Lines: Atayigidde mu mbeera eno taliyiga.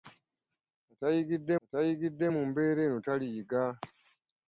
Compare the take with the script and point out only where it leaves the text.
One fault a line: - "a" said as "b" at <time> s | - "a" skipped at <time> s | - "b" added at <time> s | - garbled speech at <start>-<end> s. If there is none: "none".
- "atayigidde" added at 1.6 s